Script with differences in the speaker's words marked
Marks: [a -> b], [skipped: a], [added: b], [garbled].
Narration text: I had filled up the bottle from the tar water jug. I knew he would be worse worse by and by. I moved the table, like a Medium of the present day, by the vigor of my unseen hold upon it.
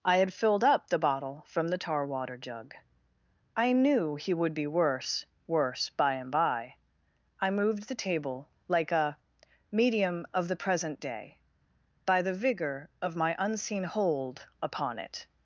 I had filled up the bottle from the tar water jug. I knew he would be worse worse by and by. I moved the table, like a Medium of the present day, by the vigor of my unseen hold upon it.